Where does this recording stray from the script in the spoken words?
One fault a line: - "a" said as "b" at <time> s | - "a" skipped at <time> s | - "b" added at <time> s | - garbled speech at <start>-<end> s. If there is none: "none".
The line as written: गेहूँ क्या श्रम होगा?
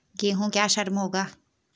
none